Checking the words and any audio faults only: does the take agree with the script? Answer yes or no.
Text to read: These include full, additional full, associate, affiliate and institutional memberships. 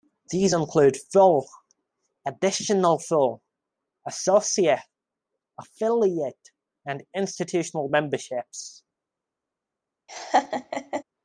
no